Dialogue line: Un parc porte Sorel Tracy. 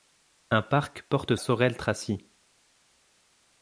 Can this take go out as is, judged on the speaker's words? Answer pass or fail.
pass